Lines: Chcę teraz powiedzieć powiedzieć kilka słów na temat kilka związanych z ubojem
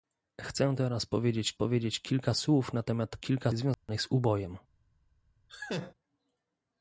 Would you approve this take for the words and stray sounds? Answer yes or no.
no